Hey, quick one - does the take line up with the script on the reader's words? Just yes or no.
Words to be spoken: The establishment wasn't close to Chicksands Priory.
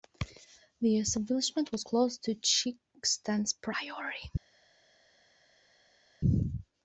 no